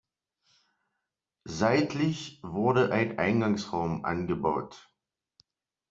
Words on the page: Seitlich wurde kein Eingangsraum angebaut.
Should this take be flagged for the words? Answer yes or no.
yes